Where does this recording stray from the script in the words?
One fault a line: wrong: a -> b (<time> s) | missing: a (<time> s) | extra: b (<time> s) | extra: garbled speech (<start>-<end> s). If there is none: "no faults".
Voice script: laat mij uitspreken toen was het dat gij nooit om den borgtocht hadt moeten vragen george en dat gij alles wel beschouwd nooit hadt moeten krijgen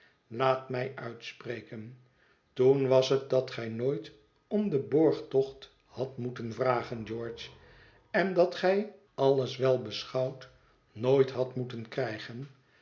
no faults